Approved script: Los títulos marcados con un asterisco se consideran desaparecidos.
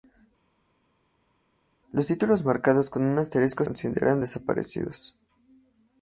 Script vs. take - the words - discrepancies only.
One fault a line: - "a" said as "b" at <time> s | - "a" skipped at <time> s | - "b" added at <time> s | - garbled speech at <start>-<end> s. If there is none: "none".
- "se" skipped at 3.6 s